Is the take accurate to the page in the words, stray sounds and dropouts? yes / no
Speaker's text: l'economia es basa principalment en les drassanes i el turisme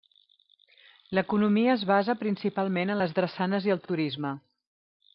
no